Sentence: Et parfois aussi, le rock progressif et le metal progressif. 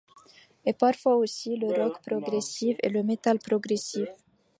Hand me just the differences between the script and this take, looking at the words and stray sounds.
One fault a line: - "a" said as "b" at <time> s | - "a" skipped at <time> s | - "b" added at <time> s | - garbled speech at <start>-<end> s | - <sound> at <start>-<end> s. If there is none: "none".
none